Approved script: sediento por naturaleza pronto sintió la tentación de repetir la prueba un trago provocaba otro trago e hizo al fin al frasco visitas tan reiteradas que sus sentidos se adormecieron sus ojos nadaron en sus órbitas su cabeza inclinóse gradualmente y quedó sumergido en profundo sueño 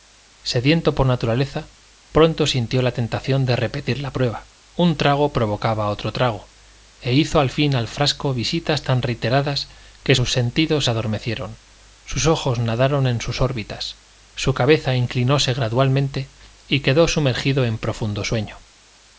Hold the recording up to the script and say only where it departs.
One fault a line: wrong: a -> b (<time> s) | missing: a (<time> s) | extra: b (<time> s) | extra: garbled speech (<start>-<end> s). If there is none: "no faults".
no faults